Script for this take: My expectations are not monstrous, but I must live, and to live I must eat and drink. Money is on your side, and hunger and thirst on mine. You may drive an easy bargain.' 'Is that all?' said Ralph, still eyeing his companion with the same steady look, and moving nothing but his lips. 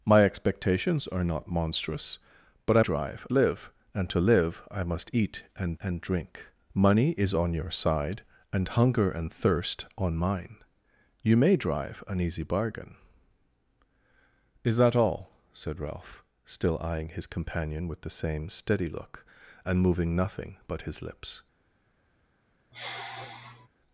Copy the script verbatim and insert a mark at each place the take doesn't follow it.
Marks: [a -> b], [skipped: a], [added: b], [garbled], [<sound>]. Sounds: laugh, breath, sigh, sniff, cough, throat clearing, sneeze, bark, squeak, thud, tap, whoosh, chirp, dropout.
My expectations are not monstrous, but I [must -> drive] live, and to live I must eat and [added: and] drink. Money is on your side, and hunger and thirst on mine. You may drive an easy bargain.' 'Is that all?' said Ralph, still eyeing his companion with the same steady look, and moving nothing but his lips. [sigh]